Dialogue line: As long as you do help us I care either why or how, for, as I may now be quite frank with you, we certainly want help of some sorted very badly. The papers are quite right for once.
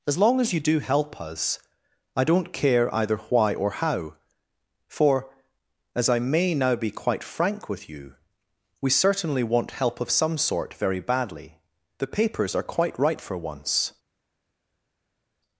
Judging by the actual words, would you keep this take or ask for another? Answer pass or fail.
fail